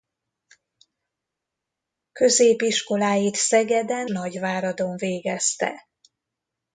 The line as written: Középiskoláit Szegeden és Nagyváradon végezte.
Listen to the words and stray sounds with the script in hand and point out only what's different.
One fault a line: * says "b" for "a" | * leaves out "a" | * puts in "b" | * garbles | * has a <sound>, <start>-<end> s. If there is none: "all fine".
* leaves out "és"